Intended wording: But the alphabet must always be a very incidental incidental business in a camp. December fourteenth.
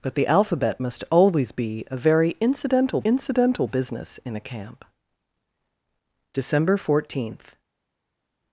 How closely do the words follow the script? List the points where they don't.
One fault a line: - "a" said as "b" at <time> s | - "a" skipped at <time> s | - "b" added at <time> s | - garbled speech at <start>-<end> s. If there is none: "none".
none